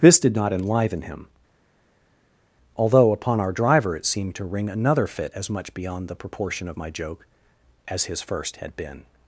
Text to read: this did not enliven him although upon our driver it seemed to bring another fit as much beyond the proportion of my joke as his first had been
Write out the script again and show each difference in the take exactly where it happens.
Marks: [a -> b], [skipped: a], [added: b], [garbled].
this did not enliven him although upon our driver it seemed to [bring -> ring] another fit as much beyond the proportion of my joke as his first had been